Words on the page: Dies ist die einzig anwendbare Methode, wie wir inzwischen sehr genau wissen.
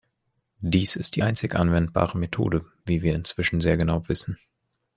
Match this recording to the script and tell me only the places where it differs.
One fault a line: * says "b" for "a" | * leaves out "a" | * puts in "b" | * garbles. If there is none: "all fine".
all fine